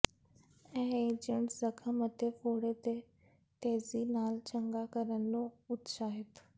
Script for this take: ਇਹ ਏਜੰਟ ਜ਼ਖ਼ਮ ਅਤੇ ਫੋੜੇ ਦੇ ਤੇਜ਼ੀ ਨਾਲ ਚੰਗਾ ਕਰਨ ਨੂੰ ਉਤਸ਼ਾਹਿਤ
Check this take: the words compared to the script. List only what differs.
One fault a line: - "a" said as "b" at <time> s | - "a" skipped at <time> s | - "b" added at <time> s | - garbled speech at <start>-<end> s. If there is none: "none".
none